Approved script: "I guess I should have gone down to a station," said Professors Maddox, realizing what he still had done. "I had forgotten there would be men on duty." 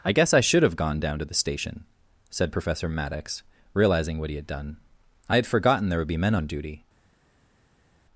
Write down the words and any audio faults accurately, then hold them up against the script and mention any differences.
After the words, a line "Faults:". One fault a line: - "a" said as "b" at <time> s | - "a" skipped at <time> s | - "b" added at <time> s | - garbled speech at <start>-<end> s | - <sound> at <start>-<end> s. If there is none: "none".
"I guess I should have gone down to the station," said Professor Maddox, realizing what he had done. "I had forgotten there would be men on duty."
Faults:
- "a" said as "the" at 1.2 s
- "Professors" said as "Professor" at 2.5 s
- "still" skipped at 4.4 s